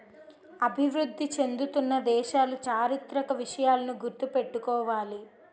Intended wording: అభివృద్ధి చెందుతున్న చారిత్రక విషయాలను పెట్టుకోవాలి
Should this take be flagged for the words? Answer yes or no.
yes